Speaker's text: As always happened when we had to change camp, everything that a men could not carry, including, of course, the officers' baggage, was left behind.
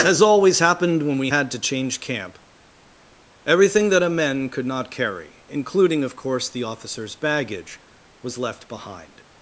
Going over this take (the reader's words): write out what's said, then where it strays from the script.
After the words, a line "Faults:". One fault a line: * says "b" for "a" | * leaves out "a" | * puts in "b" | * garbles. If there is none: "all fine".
As always happened when we had to change camp, everything that a men could not carry, including, of course, the officers' baggage, was left behind.
Faults:
all fine